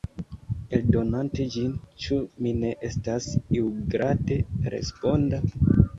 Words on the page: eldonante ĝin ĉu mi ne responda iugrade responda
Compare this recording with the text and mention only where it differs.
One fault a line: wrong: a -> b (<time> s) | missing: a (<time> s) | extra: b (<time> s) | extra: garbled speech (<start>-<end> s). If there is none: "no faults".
wrong: responda -> estas (2.9 s)